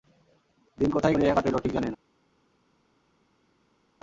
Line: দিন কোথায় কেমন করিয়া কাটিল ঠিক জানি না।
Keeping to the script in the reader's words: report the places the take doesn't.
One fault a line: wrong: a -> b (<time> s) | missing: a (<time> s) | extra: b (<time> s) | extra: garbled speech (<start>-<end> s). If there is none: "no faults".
missing: কেমন (1.1 s)